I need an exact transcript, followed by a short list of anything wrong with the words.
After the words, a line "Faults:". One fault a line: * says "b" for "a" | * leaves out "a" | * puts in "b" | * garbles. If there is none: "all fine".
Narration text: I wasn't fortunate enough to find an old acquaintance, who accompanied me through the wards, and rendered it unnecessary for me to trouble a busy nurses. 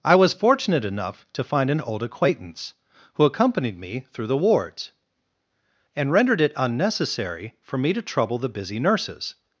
I was fortunate enough to find an old acquaintance, who accompanied me through the wards, and rendered it unnecessary for me to trouble the busy nurses.
Faults:
* says "was" for "wasn't"
* says "the" for "a"